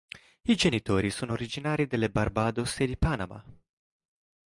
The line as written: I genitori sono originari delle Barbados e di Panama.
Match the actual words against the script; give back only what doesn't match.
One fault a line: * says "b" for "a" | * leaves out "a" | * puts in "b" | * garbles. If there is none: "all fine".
all fine